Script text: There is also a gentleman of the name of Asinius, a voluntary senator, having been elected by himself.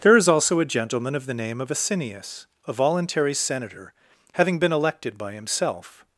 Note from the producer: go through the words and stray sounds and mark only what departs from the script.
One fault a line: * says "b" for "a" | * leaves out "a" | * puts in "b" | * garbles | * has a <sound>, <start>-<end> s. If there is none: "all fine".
all fine